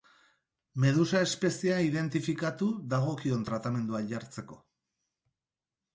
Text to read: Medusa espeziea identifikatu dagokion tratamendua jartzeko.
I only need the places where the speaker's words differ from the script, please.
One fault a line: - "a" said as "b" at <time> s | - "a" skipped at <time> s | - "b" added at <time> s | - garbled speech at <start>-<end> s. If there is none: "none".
none